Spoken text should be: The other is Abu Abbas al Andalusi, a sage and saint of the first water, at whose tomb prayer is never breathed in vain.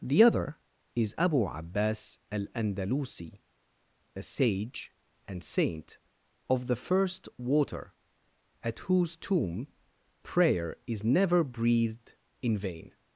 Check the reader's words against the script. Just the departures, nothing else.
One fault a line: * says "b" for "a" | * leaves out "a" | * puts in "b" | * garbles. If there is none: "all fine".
all fine